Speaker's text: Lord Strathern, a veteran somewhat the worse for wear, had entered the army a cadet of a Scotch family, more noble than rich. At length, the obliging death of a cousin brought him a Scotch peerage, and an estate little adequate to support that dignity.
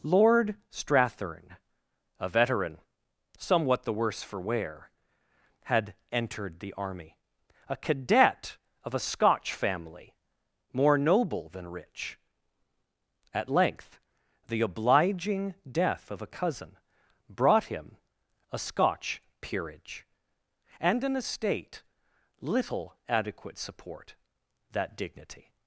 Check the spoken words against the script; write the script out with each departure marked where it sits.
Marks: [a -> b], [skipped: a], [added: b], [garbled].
Lord Strathern, a veteran somewhat the worse for wear, had entered the army a cadet of a Scotch family, more noble than rich. At length, the obliging death of a cousin brought him a Scotch peerage, and an estate little adequate [skipped: to] support that dignity.